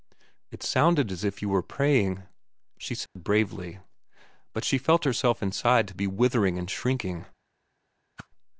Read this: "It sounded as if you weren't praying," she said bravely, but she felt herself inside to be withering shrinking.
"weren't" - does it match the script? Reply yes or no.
no